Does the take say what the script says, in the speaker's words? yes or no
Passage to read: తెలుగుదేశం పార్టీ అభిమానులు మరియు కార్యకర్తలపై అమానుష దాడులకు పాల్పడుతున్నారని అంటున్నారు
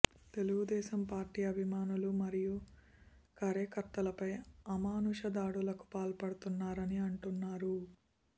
yes